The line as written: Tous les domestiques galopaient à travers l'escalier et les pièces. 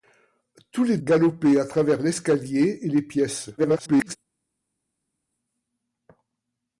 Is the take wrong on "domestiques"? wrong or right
wrong